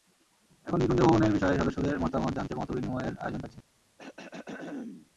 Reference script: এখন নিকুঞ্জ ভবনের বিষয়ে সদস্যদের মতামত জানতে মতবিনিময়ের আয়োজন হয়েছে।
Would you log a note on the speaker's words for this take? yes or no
no